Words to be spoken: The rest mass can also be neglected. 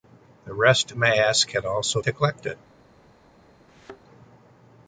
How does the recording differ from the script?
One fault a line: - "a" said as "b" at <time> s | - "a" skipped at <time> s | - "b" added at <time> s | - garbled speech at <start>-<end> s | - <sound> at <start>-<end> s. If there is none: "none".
- "be" skipped at 2.0 s
- thud at 3.7-4.0 s